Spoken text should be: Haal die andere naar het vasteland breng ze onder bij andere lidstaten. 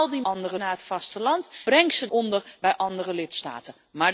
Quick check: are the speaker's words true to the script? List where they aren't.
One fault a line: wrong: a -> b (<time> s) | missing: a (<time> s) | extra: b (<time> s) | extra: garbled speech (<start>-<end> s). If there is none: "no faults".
no faults